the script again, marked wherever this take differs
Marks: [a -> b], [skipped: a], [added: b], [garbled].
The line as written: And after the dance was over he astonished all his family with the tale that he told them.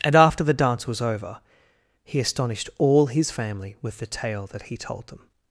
And after the dance was over he astonished all his family with the tale that he told them.